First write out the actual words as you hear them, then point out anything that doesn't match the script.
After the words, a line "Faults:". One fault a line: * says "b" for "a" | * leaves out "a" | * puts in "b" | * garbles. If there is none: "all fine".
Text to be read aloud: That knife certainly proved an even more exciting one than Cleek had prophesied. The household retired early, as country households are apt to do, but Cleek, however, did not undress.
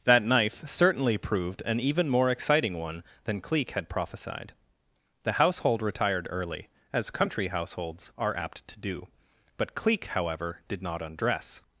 That knife certainly proved an even more exciting one than Cleek had prophesied. The household retired early, as country households are apt to do, but Cleek, however, did not undress.
Faults:
all fine